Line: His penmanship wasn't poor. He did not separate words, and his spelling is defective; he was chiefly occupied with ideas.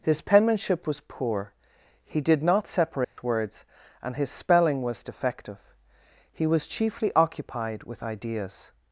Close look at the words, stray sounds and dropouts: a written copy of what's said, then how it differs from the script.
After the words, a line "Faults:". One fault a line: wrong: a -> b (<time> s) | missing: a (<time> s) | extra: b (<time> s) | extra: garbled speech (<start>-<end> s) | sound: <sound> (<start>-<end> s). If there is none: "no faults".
His penmanship was poor. He did not separate words, and his spelling was defective; he was chiefly occupied with ideas.
Faults:
wrong: wasn't -> was (0.9 s)
sound: dropout (3.0-3.2 s)
wrong: is -> was (4.8 s)